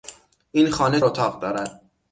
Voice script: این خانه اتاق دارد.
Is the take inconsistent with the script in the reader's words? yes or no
no